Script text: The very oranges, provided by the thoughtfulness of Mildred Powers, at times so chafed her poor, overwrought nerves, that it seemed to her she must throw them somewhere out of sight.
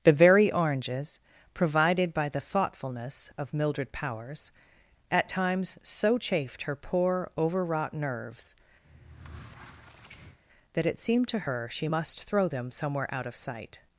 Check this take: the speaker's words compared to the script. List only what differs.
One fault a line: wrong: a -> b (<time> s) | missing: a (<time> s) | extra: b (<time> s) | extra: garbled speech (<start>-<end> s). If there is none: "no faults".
no faults